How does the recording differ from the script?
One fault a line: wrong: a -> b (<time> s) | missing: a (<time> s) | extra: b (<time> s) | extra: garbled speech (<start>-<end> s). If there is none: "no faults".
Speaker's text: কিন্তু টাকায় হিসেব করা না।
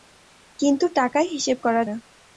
no faults